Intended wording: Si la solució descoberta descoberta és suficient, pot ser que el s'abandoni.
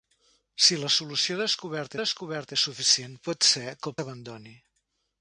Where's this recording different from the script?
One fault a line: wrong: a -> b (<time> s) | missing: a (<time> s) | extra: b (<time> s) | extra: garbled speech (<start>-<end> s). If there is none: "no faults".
no faults